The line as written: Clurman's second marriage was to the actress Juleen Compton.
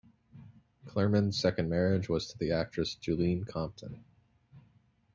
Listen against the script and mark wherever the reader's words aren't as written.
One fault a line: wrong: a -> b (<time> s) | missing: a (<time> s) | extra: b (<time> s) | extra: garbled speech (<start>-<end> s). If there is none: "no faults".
no faults